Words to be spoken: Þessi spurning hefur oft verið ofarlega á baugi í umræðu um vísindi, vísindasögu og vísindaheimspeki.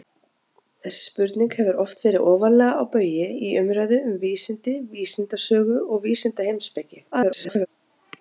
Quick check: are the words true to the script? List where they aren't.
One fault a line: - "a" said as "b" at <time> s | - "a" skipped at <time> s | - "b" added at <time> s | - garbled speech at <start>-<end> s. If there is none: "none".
- garbled speech at 7.1-7.7 s